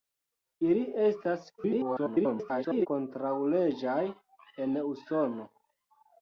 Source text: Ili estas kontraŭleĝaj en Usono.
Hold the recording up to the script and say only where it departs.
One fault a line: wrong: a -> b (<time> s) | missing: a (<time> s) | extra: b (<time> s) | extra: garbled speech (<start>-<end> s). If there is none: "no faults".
extra: garbled speech (1.6-2.9 s)